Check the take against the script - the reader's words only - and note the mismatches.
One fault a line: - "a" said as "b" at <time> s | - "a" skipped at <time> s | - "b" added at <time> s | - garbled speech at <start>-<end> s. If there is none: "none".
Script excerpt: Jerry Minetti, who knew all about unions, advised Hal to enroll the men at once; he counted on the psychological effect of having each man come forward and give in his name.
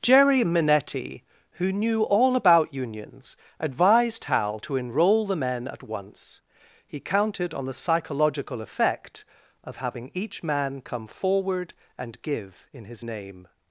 none